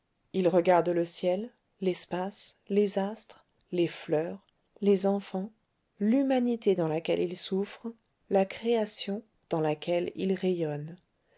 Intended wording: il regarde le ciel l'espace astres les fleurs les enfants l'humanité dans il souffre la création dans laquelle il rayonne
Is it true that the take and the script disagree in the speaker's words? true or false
true